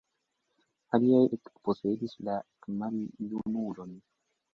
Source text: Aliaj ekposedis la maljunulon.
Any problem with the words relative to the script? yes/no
no